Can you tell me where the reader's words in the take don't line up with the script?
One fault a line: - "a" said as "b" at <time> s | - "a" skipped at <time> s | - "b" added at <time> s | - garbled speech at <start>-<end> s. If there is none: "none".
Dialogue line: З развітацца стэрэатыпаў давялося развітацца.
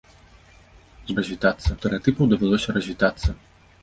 none